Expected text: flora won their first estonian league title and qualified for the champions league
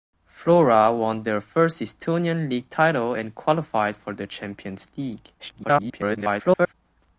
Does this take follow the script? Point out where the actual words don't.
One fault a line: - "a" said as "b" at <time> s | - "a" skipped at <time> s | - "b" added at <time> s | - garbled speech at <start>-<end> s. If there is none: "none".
- garbled speech at 5.4-6.7 s